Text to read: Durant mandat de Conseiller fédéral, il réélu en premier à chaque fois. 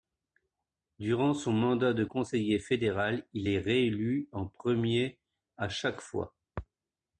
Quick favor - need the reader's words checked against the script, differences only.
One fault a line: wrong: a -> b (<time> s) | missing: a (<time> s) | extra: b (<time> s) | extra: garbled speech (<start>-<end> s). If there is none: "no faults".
extra: son (1.4 s)
extra: est (3.5 s)